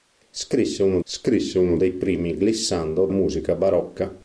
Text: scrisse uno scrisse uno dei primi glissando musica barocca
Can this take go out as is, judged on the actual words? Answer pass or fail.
pass